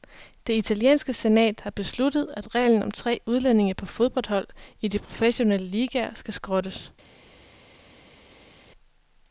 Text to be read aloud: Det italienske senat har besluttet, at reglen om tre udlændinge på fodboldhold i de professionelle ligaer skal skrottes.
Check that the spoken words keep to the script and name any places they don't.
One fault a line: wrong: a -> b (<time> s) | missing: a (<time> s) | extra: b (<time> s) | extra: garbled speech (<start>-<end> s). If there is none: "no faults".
no faults